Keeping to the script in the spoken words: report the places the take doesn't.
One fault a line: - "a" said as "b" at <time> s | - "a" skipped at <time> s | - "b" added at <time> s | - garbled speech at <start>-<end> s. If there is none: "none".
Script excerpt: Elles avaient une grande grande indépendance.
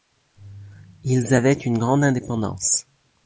- "Elles" said as "Ils" at 1.1 s
- "grande" skipped at 2.0 s